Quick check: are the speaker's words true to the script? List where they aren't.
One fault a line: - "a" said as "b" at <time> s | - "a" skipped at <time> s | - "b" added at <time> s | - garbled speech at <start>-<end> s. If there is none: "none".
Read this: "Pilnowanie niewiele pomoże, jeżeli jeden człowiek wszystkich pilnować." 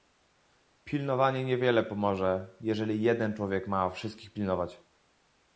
- "ma" added at 3.7 s